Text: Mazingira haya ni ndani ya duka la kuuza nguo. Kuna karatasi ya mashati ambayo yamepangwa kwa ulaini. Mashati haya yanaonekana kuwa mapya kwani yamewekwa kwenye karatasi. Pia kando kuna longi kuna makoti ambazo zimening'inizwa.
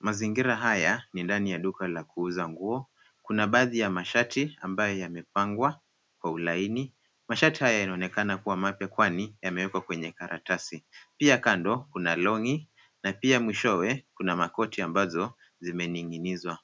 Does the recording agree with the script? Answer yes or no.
no